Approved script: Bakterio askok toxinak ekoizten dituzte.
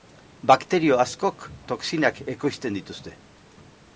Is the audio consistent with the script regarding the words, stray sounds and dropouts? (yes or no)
yes